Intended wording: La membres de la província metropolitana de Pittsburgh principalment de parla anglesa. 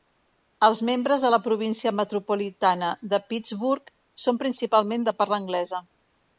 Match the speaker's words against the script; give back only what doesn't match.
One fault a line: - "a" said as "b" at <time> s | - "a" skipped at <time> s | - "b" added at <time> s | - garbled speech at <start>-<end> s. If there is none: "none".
- "La" said as "Els" at 0.7 s
- "són" added at 4.3 s